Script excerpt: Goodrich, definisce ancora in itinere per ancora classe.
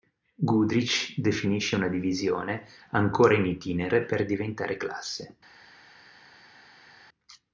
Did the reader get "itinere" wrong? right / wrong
right